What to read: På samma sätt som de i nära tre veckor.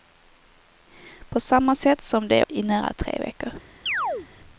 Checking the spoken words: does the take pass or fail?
pass